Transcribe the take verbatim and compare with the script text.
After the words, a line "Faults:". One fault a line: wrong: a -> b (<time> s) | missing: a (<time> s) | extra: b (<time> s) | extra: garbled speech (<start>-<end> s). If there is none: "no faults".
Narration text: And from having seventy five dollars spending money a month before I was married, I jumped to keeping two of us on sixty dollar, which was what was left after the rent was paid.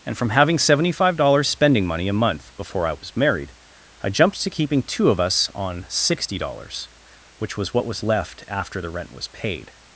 And from having seventy five dollars spending money a month before I was married, I jumped to keeping two of us on sixty dollars, which was what was left after the rent was paid.
Faults:
wrong: dollar -> dollars (6.4 s)